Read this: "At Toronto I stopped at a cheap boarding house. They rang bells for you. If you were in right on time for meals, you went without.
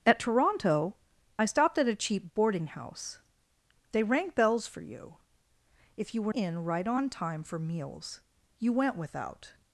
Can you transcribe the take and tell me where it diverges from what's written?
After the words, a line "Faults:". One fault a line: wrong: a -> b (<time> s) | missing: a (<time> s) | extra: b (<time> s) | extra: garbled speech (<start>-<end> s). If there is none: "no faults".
"At Toronto I stopped at a cheap boarding house. They rang bells for you. If you were in right on time for meals, you went without.
Faults:
no faults